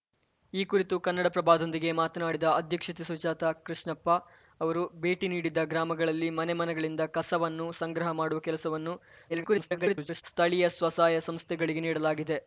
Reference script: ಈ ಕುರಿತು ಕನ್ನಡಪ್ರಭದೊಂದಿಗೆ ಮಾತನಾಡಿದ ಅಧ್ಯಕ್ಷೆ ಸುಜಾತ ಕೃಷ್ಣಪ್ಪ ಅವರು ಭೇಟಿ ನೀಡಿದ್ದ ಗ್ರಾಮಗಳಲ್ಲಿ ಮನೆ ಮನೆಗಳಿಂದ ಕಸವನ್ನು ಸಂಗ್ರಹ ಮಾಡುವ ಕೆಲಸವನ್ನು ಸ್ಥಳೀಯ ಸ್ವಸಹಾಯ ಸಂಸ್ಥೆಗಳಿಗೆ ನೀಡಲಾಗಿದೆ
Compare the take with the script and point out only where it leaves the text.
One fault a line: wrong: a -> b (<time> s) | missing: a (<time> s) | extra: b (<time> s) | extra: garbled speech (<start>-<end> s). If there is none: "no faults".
extra: garbled speech (9.3-10.2 s)